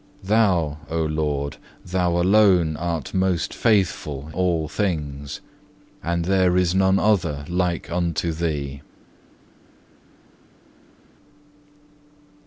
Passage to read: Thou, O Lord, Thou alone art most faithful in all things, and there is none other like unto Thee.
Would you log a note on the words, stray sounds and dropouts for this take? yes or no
yes